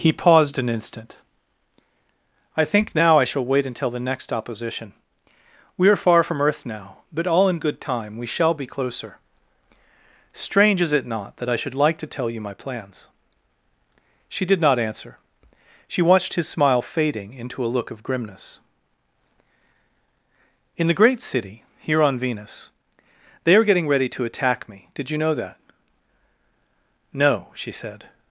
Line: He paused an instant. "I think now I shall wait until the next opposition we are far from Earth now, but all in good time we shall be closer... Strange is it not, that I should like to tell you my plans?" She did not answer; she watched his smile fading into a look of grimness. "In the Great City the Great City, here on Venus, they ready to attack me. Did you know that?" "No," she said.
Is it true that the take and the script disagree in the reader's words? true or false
true